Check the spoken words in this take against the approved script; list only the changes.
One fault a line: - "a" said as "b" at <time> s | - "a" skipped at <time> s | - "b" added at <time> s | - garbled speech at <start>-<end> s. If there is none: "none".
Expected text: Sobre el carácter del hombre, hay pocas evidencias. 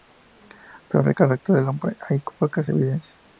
none